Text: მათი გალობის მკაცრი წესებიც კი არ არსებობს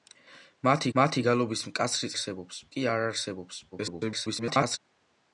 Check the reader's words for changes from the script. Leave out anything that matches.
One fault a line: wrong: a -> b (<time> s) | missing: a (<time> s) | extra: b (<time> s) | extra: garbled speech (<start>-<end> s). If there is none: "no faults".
extra: მათი (1.0 s)
wrong: წესებიც -> არსებობს (2.1 s)
extra: garbled speech (3.7-4.8 s)